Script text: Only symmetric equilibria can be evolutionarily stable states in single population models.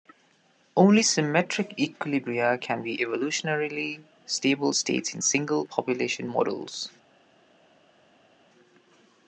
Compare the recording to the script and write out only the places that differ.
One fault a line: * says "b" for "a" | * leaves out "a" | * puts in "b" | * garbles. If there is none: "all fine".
all fine